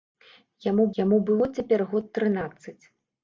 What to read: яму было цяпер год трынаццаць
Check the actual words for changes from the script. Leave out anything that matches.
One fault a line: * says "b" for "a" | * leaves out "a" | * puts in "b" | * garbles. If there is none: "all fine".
* puts in "яму"